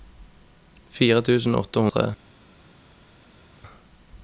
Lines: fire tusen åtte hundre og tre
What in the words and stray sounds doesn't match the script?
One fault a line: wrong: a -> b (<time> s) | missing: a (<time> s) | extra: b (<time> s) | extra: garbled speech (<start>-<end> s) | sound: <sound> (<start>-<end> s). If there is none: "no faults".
missing: hundre (1.9 s)